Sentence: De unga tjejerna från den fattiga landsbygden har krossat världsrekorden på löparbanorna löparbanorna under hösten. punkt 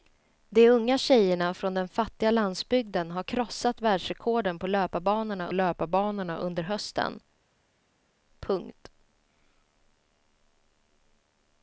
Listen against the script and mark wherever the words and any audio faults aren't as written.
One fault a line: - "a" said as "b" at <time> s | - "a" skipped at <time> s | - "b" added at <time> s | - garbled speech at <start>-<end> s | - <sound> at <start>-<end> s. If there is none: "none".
none